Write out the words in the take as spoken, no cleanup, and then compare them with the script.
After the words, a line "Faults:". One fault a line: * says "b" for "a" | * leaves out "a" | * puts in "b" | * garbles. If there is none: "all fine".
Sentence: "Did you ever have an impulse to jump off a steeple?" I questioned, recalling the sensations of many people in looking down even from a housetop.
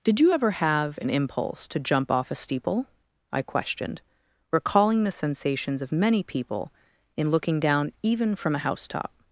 "Did you ever have an impulse to jump off a steeple?" I questioned, recalling the sensations of many people in looking down even from a housetop.
Faults:
all fine